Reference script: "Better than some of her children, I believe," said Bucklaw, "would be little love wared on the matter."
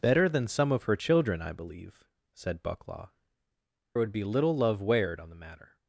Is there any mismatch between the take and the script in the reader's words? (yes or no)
no